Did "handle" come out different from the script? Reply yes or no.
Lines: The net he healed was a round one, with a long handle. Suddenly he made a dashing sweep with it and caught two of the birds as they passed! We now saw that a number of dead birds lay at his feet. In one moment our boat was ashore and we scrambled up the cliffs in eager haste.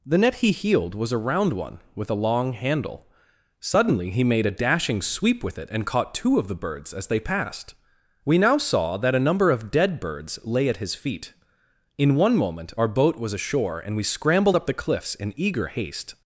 no